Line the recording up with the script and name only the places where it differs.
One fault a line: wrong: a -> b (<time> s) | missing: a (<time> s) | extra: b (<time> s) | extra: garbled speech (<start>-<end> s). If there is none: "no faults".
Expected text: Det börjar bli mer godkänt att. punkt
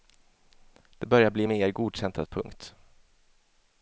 no faults